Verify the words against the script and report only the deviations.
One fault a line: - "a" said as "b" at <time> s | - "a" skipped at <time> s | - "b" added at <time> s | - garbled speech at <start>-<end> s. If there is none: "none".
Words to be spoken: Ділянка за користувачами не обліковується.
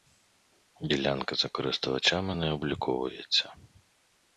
none